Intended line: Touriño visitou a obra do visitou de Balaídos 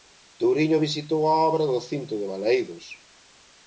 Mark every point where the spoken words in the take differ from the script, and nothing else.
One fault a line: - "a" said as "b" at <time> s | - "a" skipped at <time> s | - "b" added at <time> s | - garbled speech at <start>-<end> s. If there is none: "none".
- "visitou" said as "cinto" at 1.9 s